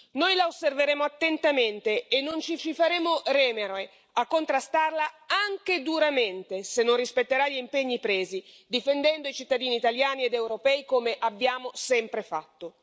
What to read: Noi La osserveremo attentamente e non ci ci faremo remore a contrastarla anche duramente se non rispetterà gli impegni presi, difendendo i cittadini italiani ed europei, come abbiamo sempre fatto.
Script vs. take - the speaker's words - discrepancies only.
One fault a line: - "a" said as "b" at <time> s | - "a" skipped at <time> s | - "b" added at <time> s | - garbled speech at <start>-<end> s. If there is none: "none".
none